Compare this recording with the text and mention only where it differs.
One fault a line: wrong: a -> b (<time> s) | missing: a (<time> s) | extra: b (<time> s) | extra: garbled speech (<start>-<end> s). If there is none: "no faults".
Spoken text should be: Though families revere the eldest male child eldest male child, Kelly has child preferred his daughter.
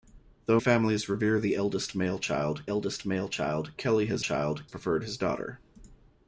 no faults